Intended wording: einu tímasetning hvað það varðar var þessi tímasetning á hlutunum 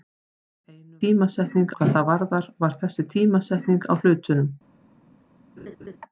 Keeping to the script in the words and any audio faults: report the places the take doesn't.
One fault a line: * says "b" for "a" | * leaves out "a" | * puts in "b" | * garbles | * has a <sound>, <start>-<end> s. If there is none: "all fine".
* has a laugh, 5.6-6.0 s